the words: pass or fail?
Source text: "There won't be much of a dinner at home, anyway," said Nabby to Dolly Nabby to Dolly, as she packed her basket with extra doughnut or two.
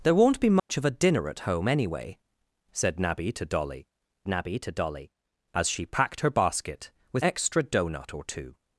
pass